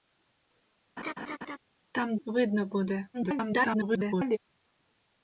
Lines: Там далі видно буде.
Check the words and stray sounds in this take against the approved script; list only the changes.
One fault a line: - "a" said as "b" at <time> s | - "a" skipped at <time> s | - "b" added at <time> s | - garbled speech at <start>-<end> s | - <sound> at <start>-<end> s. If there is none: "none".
- laugh at 1.0-1.6 s
- "далі" skipped at 2.2 s
- garbled speech at 3.1-4.4 s